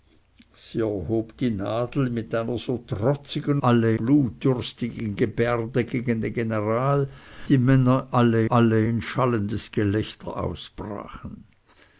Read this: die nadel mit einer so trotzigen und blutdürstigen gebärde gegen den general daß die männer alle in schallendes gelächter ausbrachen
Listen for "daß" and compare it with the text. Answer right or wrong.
wrong